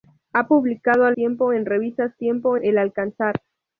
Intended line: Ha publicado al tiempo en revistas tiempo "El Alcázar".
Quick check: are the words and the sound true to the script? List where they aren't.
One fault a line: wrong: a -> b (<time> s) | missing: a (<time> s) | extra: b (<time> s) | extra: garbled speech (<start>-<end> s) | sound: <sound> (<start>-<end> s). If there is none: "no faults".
no faults